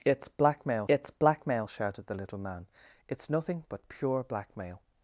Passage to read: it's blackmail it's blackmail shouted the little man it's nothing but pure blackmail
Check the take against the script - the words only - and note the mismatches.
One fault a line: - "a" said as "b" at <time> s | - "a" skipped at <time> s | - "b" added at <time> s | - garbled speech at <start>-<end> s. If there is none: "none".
none